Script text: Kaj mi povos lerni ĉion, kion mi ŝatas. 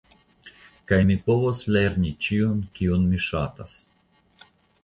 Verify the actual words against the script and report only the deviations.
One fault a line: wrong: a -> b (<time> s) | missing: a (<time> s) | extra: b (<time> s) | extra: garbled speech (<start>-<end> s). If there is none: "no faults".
no faults